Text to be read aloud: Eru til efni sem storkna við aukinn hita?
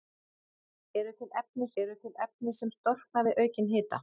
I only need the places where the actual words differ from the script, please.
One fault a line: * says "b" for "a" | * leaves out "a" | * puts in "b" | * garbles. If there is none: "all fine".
* puts in "eru til efni"